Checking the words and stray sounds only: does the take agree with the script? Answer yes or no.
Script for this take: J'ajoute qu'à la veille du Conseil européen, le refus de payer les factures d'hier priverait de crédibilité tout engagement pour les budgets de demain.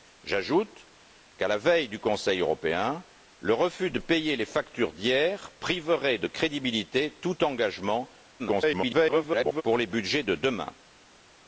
no